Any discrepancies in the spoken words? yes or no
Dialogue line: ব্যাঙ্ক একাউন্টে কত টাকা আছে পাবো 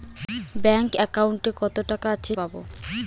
no